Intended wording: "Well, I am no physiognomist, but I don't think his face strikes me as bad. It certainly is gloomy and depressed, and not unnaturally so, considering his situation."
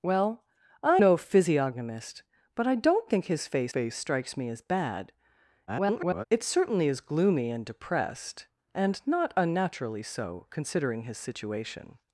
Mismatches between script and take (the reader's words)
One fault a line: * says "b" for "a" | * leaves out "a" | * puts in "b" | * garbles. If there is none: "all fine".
* leaves out "am"
* puts in "face"
* garbles